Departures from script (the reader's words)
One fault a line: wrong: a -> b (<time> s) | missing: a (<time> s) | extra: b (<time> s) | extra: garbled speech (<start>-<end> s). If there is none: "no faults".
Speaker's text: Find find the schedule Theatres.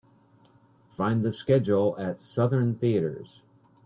missing: find (1.2 s)
extra: at Southern (2.0 s)